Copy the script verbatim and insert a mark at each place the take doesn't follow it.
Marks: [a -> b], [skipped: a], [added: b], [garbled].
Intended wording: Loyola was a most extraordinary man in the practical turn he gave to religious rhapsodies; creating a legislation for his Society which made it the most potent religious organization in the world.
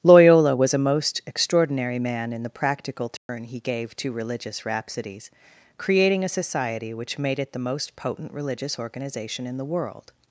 Loyola was a most extraordinary man in the practical turn he gave to religious rhapsodies; creating a [skipped: legislation for his] Society which made it the most potent religious organization in the world.